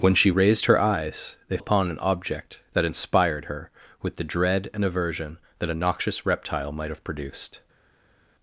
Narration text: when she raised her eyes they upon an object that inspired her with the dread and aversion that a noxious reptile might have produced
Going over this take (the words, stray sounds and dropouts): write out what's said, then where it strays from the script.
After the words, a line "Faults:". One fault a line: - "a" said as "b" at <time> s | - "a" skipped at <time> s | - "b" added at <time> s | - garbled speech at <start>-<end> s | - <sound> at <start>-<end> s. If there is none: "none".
when she raised her eyes they upon an object that inspired her with the dread and aversion that a noxious reptile might have produced
Faults:
none